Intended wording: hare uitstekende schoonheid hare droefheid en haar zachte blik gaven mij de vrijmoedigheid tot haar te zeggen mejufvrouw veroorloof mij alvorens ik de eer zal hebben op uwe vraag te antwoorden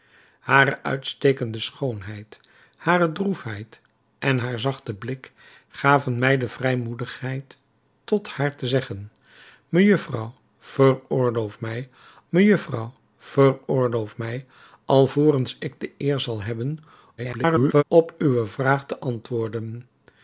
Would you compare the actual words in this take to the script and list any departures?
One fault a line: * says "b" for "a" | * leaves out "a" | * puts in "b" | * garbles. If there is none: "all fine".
* puts in "mejufvrouw veroorloof mij"
* garbles